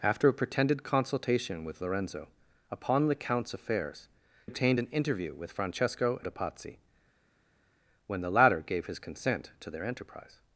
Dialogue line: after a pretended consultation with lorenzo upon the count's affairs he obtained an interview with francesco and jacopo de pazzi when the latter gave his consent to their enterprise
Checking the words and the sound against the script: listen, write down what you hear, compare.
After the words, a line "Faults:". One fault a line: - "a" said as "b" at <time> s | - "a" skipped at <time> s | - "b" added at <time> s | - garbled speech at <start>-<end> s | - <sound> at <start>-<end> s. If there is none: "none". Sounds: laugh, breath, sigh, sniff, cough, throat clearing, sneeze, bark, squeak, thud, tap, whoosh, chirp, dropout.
after a pretended consultation with lorenzo upon the count's affairs obtained an interview with francesco de pazzi when the latter gave his consent to their enterprise
Faults:
- "he" skipped at 4.1 s
- "and jacopo" skipped at 6.2 s